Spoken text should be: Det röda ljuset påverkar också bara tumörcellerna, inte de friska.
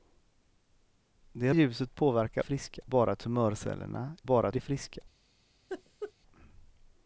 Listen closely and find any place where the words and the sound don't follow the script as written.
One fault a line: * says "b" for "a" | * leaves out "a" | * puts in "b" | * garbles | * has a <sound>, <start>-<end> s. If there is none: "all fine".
* leaves out "röda"
* says "friska" for "också"
* says "bara" for "inte"
* has a laugh, 5.7-6.1 s